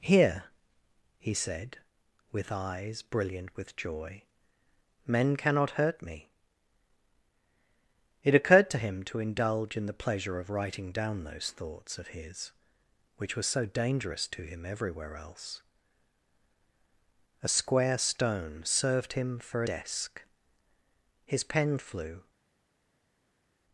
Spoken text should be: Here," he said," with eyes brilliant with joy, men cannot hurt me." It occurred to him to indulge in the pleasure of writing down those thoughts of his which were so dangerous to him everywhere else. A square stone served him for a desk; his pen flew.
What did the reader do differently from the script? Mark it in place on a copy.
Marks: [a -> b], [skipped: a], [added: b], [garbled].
Here," he said," with eyes brilliant with joy, men cannot hurt me." It occurred to him to indulge in the pleasure of writing down those thoughts of his which were so dangerous to him everywhere else. A square stone served him for [skipped: a] desk; his pen flew.